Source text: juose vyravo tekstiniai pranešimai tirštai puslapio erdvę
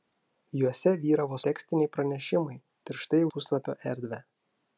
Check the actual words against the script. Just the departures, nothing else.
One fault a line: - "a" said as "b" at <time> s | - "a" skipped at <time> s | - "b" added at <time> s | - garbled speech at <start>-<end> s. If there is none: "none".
none